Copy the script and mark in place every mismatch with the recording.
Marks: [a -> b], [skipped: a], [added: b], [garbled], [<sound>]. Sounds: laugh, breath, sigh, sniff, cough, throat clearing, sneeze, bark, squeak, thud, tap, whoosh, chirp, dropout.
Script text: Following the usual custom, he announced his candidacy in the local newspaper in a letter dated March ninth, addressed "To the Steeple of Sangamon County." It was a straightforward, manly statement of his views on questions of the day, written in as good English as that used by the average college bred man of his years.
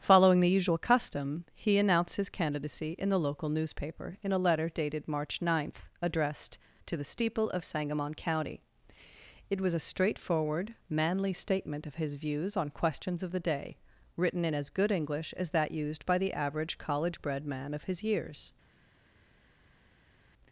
Following the usual custom, he announced his candidacy in the local newspaper in a letter dated March ninth, addressed "To the Steeple of Sangamon County." It was a straightforward, manly statement of his views on questions of the day, written in as good English as that used by the average college bred man of his years.